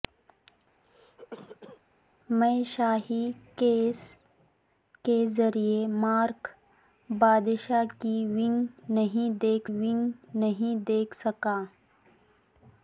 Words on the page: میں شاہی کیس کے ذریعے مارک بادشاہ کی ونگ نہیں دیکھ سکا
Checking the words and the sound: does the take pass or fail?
fail